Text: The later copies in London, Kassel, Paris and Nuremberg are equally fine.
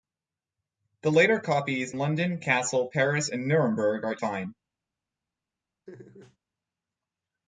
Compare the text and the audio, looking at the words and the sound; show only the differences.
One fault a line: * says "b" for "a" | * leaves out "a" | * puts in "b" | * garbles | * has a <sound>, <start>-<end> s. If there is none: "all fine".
* leaves out "in"
* leaves out "equally"
* has a laugh, 5.9-6.4 s